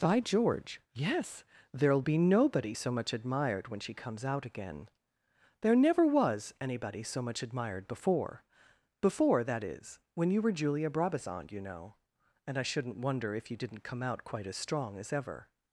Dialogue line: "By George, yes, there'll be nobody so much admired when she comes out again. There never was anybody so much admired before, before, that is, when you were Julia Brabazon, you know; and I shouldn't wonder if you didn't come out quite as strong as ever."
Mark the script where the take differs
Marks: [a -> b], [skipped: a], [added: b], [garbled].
"By George, yes, there'll be nobody so much admired when she comes out again. There never was anybody so much admired before, before, that is, when you were Julia Brabazon, you know; and I shouldn't wonder if you didn't come out quite as strong as ever."